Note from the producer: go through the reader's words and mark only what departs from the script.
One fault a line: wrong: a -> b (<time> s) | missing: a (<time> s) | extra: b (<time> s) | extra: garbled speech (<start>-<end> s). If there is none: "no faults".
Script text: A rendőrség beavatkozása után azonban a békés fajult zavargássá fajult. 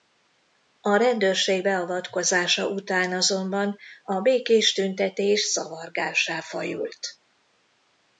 wrong: fajult -> tüntetés (4.7 s)